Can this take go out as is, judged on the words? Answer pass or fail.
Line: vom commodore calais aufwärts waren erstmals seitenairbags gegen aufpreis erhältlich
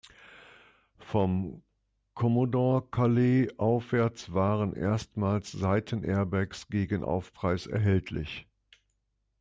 pass